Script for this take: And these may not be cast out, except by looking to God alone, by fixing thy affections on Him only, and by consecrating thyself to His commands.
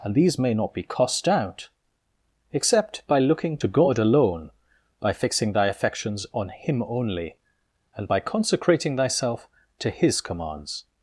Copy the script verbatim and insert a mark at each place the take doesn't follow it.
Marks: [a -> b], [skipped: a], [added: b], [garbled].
And these may not be [cast -> cost] out, except by looking to God alone, by fixing thy affections on Him only, and by consecrating thyself to His commands.